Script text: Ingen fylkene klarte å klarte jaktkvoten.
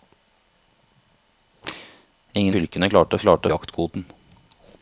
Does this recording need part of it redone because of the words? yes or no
no